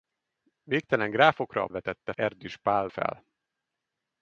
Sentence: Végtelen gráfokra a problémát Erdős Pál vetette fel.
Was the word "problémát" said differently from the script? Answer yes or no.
yes